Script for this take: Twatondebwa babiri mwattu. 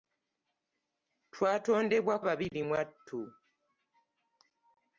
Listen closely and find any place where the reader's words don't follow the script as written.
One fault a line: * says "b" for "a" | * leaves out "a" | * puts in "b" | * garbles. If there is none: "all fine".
all fine